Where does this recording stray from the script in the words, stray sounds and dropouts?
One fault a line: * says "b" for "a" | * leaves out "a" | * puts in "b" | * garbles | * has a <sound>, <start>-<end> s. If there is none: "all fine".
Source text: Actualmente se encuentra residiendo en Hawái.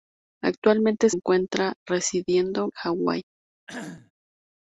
* leaves out "se"
* leaves out "en"
* has a cough, 3.7-4.1 s